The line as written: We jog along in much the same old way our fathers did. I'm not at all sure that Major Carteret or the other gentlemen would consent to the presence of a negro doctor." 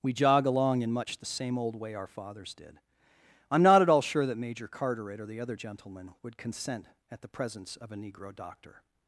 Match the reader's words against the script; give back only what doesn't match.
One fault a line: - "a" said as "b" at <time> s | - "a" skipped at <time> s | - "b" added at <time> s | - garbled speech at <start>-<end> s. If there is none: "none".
- "to" said as "at" at 7.1 s